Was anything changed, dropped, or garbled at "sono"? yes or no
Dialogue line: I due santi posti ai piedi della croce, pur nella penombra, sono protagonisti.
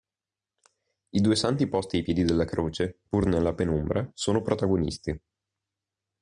no